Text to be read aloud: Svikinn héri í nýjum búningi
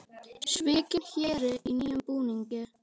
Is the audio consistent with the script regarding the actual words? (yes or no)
yes